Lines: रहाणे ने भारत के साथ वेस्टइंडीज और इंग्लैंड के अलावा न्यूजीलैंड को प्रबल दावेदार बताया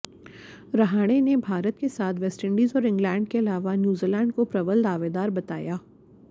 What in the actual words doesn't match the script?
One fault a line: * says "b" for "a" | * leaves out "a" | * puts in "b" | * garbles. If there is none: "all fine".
all fine